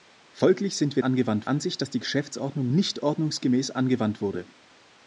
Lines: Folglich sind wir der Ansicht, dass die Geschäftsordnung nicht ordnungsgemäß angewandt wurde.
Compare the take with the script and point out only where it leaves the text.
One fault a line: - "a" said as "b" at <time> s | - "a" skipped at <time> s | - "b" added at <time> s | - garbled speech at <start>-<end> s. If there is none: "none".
- "der" said as "angewandt" at 1.0 s